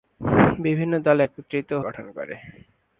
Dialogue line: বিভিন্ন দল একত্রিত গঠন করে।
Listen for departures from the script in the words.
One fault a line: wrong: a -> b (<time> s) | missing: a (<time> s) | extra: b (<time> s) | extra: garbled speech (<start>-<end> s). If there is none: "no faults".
no faults